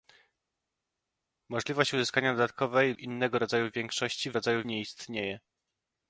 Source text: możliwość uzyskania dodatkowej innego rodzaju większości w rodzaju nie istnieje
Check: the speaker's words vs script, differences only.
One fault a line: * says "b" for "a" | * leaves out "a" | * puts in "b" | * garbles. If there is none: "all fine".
all fine